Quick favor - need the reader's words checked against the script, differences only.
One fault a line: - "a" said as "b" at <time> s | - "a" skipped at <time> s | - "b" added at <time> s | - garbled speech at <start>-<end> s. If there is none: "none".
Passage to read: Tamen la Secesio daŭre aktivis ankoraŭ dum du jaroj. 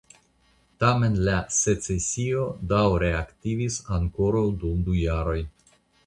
none